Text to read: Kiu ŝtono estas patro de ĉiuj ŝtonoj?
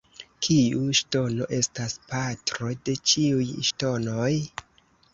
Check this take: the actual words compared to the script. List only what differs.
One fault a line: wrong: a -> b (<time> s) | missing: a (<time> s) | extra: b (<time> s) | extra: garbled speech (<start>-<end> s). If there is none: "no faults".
no faults